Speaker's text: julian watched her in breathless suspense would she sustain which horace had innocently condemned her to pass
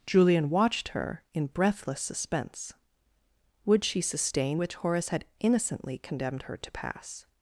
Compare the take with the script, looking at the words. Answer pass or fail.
pass